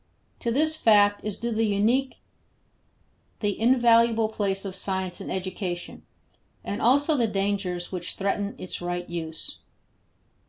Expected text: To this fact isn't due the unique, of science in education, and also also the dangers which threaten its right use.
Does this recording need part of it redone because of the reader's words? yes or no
yes